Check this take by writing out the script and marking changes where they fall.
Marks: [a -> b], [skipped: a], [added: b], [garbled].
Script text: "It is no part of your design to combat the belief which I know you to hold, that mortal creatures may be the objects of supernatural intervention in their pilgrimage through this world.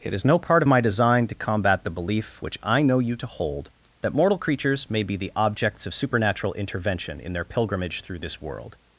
"It is no part of [your -> my] design to combat the belief which I know you to hold, that mortal creatures may be the objects of supernatural intervention in their pilgrimage through this world.